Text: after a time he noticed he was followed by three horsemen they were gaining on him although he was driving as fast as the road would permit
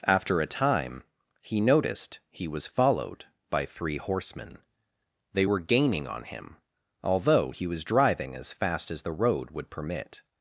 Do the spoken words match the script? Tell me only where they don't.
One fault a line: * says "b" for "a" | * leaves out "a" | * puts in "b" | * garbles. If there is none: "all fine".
all fine